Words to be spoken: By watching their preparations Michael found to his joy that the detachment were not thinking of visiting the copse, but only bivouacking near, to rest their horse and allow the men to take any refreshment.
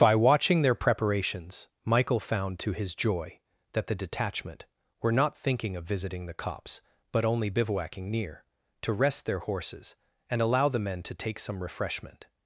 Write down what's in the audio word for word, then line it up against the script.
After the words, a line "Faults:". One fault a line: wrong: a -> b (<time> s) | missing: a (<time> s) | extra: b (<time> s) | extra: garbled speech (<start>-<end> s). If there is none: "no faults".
By watching their preparations Michael found to his joy that the detachment were not thinking of visiting the copse, but only bivouacking near, to rest their horses and allow the men to take some refreshment.
Faults:
wrong: horse -> horses (9.4 s)
wrong: any -> some (11.4 s)